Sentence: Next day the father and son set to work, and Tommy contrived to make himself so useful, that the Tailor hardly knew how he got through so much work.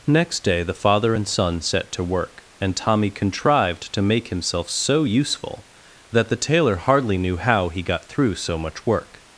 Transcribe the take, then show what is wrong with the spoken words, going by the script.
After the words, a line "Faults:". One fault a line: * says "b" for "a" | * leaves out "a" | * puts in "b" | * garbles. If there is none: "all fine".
Next day the father and son set to work, and Tommy contrived to make himself so useful, that the Tailor hardly knew how he got through so much work.
Faults:
all fine